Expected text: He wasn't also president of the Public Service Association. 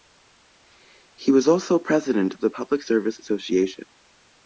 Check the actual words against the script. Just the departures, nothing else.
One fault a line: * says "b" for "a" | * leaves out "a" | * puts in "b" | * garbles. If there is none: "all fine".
* says "was" for "wasn't"